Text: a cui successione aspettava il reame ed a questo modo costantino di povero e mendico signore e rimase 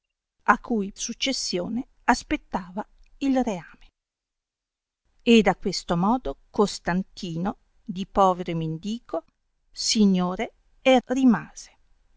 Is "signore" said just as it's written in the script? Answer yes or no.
yes